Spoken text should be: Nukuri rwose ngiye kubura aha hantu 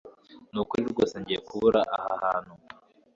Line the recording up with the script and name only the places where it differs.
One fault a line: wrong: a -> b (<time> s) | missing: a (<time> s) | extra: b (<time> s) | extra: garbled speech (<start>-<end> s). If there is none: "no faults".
no faults